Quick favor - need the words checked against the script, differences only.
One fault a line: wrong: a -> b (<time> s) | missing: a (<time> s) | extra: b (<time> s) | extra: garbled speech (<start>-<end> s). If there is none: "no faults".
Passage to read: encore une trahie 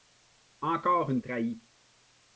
no faults